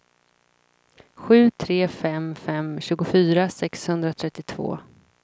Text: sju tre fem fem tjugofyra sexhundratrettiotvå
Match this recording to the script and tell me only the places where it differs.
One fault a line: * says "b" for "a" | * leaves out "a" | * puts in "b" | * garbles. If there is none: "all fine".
all fine